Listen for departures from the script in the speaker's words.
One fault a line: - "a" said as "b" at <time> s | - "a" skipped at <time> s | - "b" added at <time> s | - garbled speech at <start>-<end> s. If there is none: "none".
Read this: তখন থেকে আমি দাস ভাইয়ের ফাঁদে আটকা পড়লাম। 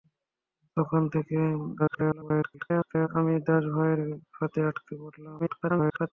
- garbled speech at 1.8-3.1 s
- garbled speech at 5.4-6.1 s